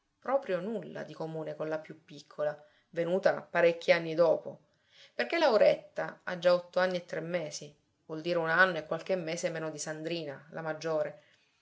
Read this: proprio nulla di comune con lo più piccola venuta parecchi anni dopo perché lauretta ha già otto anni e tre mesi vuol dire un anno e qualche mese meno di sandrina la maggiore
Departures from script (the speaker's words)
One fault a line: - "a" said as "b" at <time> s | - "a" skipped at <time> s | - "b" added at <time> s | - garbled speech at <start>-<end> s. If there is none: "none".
- "lo" said as "la" at 1.7 s